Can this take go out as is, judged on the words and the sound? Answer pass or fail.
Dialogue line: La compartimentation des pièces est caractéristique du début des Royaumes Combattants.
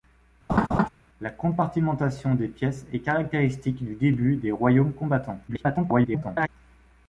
fail